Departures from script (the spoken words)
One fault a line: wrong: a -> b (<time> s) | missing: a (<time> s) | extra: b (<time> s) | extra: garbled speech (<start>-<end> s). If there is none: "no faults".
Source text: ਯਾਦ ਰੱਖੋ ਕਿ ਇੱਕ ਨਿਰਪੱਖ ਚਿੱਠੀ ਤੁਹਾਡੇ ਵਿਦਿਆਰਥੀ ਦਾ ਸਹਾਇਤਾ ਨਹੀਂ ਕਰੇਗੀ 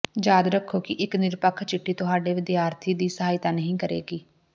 wrong: ਦਾ -> ਦੀ (2.9 s)